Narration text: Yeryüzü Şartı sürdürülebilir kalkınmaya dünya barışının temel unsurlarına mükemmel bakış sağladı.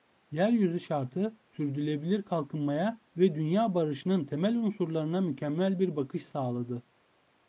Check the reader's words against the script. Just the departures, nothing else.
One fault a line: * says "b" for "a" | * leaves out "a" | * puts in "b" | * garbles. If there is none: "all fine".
* puts in "ve"
* puts in "bir"